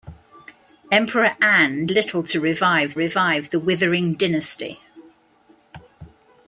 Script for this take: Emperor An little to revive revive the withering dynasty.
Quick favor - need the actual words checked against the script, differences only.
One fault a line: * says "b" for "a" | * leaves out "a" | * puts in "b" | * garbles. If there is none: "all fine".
all fine